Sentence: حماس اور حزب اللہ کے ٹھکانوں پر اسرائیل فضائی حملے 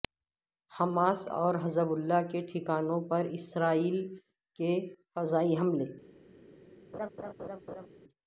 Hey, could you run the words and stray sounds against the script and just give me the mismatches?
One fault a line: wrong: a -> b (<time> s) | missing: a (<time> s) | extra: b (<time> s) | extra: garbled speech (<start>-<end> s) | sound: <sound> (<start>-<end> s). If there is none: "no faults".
extra: کے (4.6 s)
sound: laugh (6.9-7.9 s)